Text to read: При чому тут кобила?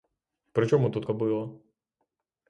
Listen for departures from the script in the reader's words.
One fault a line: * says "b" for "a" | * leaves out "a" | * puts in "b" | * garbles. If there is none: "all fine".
all fine